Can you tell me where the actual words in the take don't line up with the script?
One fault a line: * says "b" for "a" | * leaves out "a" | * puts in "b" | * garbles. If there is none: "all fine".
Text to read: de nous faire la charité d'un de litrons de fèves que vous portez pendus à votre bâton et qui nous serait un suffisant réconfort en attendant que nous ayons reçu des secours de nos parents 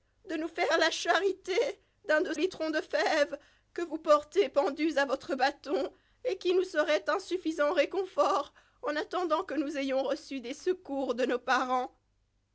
all fine